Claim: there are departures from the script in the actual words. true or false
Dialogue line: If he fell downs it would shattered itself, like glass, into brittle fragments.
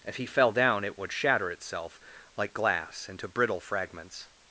true